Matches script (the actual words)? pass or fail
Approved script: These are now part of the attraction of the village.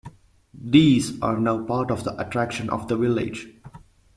pass